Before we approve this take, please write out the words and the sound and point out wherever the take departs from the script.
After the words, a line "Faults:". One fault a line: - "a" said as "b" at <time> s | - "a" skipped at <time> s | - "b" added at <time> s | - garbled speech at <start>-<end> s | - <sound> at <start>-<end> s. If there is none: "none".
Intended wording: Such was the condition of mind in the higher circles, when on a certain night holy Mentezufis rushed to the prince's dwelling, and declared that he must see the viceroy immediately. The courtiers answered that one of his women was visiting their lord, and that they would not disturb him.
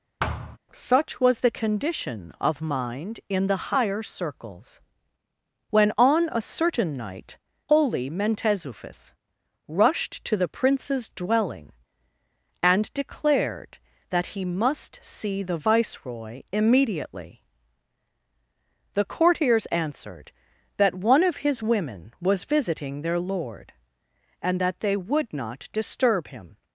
Such was the condition of mind in the higher circles, when on a certain night holy Mentezufis rushed to the prince's dwelling, and declared that he must see the viceroy immediately. The courtiers answered that one of his women was visiting their lord, and that they would not disturb him.
Faults:
- thud at 0.2-0.6 s